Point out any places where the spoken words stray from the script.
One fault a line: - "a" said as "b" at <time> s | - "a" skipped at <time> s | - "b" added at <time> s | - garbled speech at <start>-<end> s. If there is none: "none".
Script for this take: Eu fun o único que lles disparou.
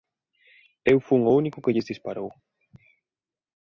none